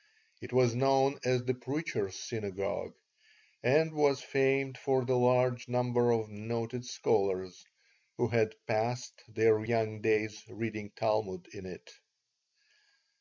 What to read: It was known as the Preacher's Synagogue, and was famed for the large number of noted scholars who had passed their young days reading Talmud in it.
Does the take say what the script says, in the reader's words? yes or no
yes